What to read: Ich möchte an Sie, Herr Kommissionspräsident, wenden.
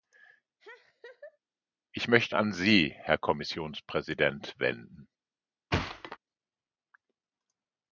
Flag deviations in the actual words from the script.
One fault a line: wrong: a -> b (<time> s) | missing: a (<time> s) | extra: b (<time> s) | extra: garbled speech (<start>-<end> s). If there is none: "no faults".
no faults